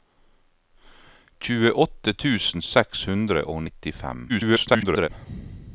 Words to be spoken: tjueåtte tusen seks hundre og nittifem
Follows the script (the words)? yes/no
no